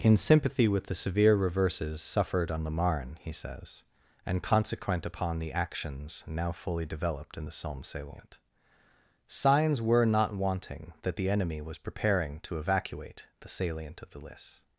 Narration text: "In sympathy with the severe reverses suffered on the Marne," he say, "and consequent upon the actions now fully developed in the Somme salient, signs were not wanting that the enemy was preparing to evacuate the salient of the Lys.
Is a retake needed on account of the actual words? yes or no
yes